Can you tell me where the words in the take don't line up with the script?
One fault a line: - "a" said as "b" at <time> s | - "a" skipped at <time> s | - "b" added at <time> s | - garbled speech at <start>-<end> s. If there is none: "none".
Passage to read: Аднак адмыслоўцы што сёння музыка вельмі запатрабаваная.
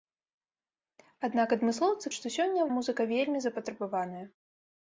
none